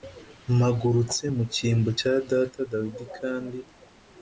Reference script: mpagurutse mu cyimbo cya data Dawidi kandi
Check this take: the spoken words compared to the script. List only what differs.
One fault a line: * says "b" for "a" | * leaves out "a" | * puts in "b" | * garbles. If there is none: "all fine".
all fine